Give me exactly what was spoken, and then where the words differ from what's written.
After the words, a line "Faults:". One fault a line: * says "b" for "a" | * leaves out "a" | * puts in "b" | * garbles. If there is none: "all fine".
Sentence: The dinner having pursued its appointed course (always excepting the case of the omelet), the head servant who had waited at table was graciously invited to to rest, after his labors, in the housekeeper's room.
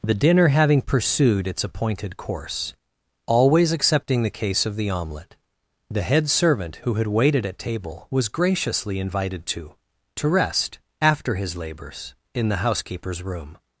The dinner having pursued its appointed course (always excepting the case of the omelet), the head servant who had waited at table was graciously invited to to rest, after his labors, in the housekeeper's room.
Faults:
all fine